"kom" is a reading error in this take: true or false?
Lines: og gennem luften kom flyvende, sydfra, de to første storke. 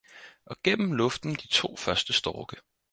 true